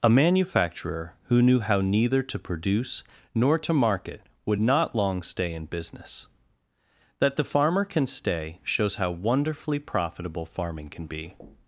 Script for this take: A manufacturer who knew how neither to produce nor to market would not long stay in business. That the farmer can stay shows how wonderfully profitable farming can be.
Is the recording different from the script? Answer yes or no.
no